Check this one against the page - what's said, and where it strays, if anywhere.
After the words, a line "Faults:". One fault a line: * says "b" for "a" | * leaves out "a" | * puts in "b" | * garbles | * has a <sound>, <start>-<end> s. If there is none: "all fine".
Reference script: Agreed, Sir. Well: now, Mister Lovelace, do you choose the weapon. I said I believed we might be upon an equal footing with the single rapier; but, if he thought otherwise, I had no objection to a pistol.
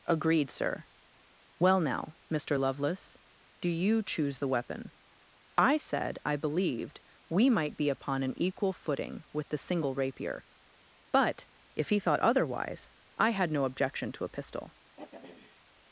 Agreed, Sir. Well: now, Mister Lovelace, do you choose the weapon. I said I believed we might be upon an equal footing with the single rapier; but, if he thought otherwise, I had no objection to a pistol.
Faults:
* has a throat clearing, 15.0-15.6 s